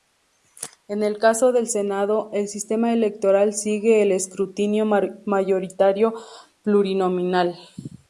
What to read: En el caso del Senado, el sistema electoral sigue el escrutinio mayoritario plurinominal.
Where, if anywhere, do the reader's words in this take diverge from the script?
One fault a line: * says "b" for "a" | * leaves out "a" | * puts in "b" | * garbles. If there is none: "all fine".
all fine